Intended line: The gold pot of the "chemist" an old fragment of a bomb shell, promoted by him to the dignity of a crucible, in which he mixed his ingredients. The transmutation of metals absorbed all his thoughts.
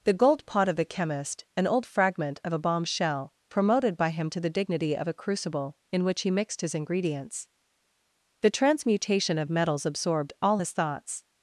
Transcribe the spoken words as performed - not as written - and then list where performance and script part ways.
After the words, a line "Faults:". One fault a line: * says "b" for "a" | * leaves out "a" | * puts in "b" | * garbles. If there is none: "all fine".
The gold pot of the "chemist" an old fragment of a bomb shell, promoted by him to the dignity of a crucible, in which he mixed his ingredients. The transmutation of metals absorbed all his thoughts.
Faults:
all fine